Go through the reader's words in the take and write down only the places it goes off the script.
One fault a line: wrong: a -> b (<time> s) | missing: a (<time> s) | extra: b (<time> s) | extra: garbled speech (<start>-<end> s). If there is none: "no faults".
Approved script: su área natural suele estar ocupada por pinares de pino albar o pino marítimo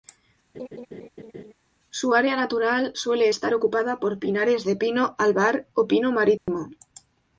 no faults